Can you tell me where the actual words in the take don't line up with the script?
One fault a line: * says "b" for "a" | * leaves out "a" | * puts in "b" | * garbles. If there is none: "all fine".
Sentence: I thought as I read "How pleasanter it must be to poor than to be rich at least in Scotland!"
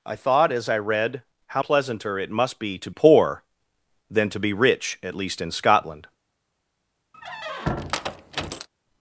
all fine